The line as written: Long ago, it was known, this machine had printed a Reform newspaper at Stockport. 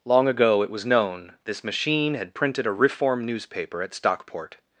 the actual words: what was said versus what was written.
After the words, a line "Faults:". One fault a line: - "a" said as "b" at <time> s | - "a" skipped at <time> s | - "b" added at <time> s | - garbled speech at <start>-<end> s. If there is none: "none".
Long ago, it was known, this machine had printed a Reform newspaper at Stockport.
Faults:
none